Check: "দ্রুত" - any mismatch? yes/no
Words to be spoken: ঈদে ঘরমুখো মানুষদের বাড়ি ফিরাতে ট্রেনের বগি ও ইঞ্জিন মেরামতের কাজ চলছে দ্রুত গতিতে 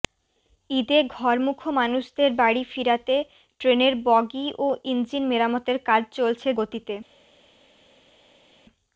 yes